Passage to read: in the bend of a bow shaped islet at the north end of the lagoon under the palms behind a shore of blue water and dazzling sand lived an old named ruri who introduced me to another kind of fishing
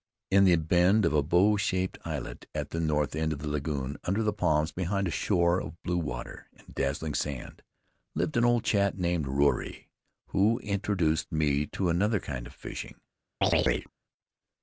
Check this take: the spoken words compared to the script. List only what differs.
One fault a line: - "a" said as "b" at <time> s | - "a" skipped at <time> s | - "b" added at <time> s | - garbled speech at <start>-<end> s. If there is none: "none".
- "chap" added at 8.6 s